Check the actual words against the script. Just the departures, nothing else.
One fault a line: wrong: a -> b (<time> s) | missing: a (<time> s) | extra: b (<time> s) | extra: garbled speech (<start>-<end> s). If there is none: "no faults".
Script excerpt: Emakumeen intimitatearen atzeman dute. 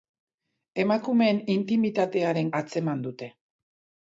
no faults